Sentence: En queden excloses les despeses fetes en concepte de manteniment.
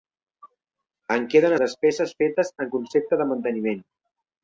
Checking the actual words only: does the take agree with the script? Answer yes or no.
no